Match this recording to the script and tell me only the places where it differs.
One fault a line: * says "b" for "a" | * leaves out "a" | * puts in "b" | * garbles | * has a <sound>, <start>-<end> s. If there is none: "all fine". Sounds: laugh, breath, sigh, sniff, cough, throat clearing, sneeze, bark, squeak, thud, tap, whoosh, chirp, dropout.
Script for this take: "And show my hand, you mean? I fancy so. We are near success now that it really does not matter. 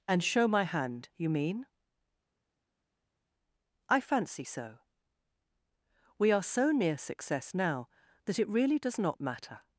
* puts in "so"